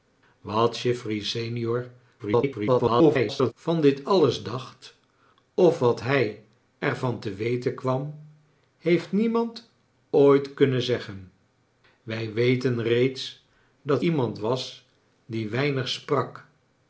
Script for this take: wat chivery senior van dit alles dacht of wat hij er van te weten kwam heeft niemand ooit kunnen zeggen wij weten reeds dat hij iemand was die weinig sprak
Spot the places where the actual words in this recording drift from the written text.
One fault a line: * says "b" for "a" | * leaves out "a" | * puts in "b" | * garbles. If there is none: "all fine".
* garbles
* leaves out "hij"